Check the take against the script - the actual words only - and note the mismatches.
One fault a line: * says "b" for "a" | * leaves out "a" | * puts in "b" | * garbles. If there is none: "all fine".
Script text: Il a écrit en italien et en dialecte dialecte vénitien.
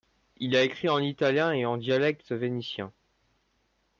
* leaves out "dialecte"